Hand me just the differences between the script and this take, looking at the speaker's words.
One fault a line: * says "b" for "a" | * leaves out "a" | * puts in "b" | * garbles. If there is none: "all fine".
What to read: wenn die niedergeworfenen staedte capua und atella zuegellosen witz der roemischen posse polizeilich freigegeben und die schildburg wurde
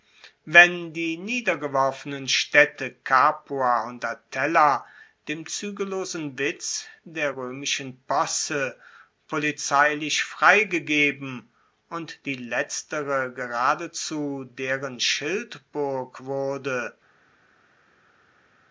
* puts in "dem"
* puts in "letztere geradezu deren"